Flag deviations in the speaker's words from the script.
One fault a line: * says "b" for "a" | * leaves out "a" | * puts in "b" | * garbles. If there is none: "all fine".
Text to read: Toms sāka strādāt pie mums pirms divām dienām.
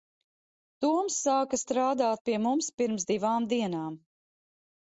all fine